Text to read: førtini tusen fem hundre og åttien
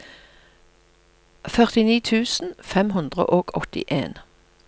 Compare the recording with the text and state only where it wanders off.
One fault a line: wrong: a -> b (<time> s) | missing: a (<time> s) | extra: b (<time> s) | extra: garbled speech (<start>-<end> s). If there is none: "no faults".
no faults